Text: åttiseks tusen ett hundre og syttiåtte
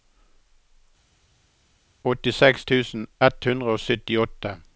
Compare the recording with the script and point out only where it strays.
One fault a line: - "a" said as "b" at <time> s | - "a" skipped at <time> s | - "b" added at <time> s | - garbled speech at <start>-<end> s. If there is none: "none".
none